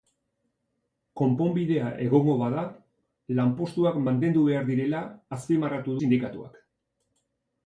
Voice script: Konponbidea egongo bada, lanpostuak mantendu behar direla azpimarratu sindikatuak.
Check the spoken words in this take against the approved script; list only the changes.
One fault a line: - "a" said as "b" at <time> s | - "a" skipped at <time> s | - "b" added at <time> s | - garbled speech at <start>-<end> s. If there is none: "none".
none